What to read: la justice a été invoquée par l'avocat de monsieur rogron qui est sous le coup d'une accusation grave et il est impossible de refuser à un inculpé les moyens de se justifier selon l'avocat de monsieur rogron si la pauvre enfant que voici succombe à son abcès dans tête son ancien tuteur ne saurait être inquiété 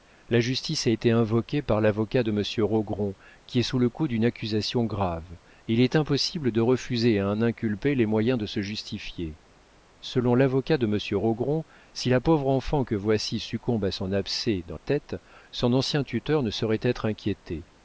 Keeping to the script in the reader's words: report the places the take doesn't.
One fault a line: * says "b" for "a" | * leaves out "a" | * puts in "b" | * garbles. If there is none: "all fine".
all fine